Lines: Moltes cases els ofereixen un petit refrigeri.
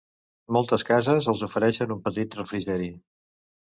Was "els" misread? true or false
false